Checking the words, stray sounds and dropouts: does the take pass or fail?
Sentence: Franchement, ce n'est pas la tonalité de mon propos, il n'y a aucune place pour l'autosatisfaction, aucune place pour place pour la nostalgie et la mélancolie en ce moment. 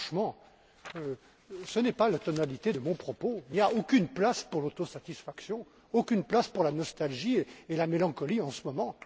fail